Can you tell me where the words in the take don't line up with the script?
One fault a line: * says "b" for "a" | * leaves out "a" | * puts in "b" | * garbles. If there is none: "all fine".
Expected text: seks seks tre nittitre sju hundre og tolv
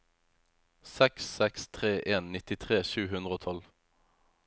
* puts in "en"